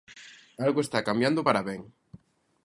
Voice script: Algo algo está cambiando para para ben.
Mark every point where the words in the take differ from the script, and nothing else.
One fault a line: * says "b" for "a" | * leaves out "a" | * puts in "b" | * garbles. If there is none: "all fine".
* leaves out "algo"
* leaves out "para"